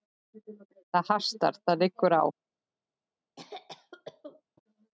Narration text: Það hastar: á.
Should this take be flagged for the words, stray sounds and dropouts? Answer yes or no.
yes